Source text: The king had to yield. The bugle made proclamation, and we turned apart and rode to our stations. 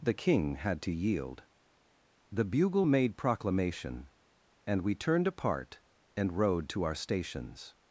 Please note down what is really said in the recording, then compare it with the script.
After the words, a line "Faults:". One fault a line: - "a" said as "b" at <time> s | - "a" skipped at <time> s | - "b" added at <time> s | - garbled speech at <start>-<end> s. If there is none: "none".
The king had to yield. The bugle made proclamation, and we turned apart and rode to our stations.
Faults:
none